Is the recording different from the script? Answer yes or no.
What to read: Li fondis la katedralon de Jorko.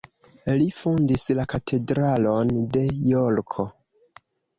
no